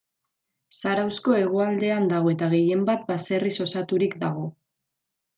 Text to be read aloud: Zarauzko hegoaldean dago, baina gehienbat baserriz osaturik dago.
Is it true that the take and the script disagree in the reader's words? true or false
true